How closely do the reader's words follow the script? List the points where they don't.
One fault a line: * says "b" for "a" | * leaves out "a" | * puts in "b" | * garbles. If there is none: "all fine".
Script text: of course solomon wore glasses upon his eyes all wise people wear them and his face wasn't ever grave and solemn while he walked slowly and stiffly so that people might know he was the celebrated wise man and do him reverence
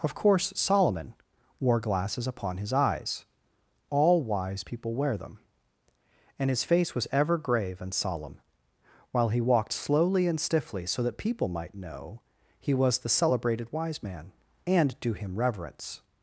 * says "was" for "wasn't"